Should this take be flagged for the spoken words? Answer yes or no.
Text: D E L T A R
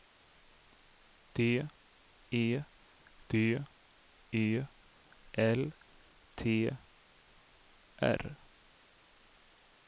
yes